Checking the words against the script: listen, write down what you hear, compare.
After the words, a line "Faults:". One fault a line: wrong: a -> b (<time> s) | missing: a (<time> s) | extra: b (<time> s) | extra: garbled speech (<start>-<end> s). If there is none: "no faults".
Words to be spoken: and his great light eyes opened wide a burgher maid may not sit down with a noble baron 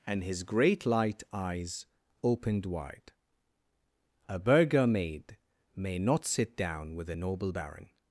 and his great light eyes opened wide a burgher maid may not sit down with a noble baron
Faults:
no faults